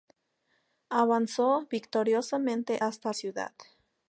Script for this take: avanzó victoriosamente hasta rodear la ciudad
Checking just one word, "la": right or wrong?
wrong